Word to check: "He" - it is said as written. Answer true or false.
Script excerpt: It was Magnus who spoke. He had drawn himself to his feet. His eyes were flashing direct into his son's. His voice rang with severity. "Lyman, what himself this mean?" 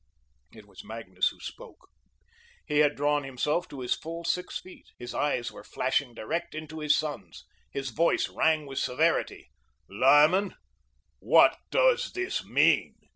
true